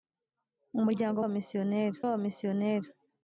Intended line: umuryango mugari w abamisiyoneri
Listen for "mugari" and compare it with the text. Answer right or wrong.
wrong